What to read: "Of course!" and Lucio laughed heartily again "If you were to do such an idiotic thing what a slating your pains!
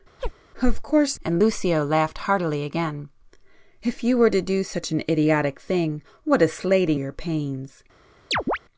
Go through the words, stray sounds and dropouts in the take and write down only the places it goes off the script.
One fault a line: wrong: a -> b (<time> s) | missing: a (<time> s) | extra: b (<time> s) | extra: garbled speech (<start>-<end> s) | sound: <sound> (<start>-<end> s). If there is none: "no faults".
sound: chirp (0.2-0.3 s)
sound: chirp (8.3-8.6 s)